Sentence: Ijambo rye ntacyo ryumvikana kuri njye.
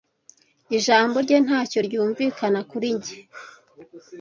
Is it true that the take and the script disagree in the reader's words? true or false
false